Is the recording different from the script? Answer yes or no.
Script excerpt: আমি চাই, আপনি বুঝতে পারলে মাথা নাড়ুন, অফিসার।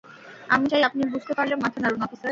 no